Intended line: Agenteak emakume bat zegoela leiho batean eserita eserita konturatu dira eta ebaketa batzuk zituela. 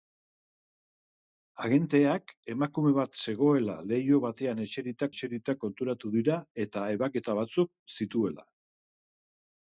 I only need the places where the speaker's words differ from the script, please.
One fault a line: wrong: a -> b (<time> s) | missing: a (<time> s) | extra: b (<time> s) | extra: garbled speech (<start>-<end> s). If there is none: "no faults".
no faults